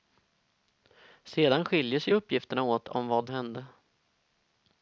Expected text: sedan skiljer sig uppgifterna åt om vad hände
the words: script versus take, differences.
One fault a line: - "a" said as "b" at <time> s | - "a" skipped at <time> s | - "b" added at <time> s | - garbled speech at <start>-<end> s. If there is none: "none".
none